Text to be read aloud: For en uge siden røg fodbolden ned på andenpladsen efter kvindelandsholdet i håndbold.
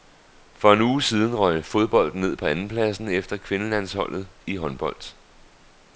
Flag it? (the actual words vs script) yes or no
no